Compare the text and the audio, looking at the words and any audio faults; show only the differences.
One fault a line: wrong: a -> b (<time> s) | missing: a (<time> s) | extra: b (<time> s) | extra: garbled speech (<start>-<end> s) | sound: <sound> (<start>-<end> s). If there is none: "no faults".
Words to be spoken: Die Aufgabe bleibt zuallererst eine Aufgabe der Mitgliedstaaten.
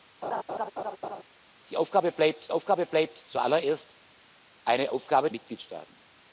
sound: laugh (0.2-1.2 s)
extra: Aufgabe bleibt (2.5 s)
missing: der (5.3 s)